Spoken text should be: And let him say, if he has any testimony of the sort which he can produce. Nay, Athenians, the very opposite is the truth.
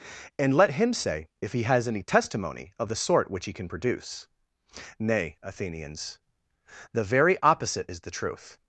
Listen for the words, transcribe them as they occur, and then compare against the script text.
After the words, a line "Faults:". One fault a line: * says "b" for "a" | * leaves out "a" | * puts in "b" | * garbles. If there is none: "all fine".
And let him say, if he has any testimony of the sort which he can produce. Nay, Athenians, the very opposite is the truth.
Faults:
all fine